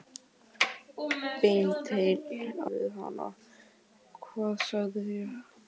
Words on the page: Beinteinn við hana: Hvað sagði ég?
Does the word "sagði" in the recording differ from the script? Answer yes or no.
no